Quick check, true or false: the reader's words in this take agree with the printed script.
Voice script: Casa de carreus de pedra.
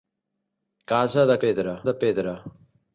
false